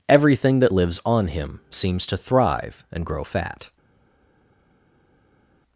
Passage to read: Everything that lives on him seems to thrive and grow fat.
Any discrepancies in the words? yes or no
no